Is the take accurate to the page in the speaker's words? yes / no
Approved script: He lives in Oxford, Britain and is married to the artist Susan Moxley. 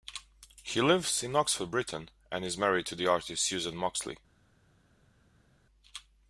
yes